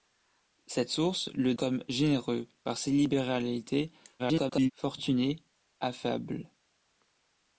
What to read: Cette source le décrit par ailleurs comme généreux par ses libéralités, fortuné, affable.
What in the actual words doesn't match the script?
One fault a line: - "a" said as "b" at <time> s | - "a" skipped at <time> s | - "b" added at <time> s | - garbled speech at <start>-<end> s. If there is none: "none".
- "décrit par ailleurs" skipped at 1.5 s
- garbled speech at 4.2-4.7 s